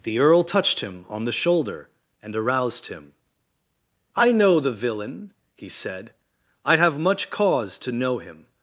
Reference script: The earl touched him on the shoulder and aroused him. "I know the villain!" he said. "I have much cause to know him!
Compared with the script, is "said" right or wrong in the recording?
right